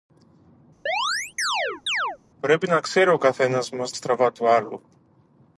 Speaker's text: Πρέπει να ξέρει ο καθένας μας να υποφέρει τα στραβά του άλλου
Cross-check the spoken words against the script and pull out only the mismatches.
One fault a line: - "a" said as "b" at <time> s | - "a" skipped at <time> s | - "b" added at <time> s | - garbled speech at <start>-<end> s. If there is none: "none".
- "να υποφέρει τα" skipped at 3.9 s